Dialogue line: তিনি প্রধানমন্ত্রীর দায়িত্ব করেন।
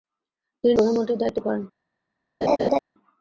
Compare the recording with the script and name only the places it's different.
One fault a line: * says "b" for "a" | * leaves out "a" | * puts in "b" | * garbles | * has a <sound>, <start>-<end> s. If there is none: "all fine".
* has a laugh, 2.4-2.8 s